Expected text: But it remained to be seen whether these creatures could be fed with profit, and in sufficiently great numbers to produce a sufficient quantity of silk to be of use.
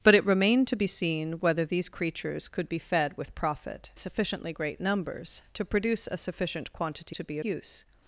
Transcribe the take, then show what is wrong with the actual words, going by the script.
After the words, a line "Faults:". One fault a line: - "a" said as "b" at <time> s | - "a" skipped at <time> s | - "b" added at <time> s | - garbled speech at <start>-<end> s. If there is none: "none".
But it remained to be seen whether these creatures could be fed with profit, sufficiently great numbers to produce a sufficient quantity to be use.
Faults:
- "and in" skipped at 3.9 s
- "of silk" skipped at 7.2 s
- "of" skipped at 7.4 s